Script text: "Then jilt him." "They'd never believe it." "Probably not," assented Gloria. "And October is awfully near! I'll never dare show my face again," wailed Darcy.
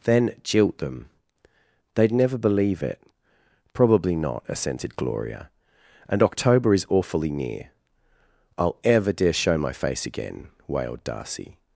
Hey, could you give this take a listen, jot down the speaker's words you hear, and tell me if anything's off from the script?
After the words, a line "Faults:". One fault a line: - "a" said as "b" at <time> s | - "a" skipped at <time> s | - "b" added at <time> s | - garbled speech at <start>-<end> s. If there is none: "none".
"Then jilt them." "They'd never believe it." "Probably not," assented Gloria. "And October is awfully near! I'll ever dare show my face again," wailed Darcy.
Faults:
- "him" said as "them" at 0.8 s
- "never" said as "ever" at 8.8 s